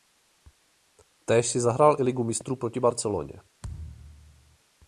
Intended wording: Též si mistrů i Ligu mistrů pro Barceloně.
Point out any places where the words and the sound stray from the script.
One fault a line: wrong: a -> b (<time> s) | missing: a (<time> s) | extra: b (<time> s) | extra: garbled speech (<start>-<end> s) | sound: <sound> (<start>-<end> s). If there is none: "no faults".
wrong: mistrů -> zahrál (1.6 s)
wrong: pro -> proti (2.6 s)
sound: thud (3.6-4.6 s)